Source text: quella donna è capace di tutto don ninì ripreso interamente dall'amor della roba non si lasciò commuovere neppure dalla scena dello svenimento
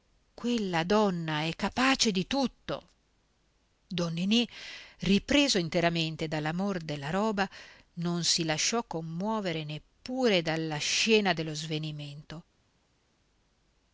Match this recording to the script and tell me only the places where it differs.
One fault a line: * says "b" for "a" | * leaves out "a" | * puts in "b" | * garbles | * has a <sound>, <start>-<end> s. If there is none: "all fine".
all fine